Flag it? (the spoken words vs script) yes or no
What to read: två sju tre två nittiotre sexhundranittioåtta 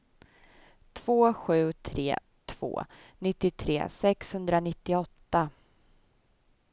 no